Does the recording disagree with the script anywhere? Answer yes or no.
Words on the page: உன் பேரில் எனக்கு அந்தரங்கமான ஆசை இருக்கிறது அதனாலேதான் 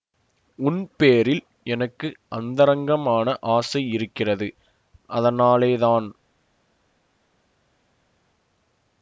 no